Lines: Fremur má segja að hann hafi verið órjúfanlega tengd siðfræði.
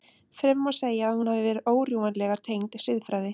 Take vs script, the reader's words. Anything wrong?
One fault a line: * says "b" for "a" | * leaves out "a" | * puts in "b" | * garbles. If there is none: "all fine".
* says "hún" for "hann"